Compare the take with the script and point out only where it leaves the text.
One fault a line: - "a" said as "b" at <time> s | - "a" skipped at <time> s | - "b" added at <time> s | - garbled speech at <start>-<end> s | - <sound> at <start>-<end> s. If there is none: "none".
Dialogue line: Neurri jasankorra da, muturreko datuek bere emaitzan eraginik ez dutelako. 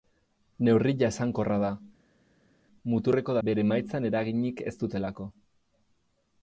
- "datuek" skipped at 3.4 s